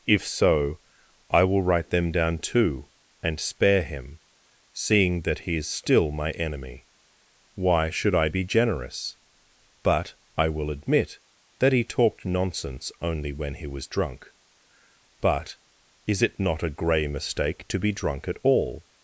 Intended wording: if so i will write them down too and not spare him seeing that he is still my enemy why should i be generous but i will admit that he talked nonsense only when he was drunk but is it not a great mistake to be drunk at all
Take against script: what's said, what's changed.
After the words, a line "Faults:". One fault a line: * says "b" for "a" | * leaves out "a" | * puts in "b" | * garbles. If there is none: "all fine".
if so i will write them down too and spare him seeing that he is still my enemy why should i be generous but i will admit that he talked nonsense only when he was drunk but is it not a grey mistake to be drunk at all
Faults:
* leaves out "not"
* says "grey" for "great"